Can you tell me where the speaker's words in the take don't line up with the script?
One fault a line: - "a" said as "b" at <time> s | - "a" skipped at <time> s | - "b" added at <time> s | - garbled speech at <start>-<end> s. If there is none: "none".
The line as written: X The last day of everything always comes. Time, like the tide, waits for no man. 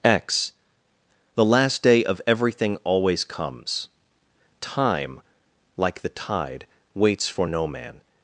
none